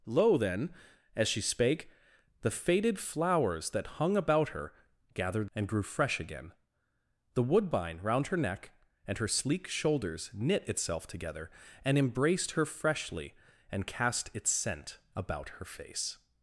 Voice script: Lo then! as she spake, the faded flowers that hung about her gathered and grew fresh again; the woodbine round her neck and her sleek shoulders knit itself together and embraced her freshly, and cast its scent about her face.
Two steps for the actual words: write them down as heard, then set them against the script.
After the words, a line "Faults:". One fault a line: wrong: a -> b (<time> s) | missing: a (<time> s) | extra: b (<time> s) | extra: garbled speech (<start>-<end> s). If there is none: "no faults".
Lo then! as she spake, the faded flowers that hung about her gathered and grew fresh again; the woodbine round her neck and her sleek shoulders knit itself together and embraced her freshly, and cast its scent about her face.
Faults:
no faults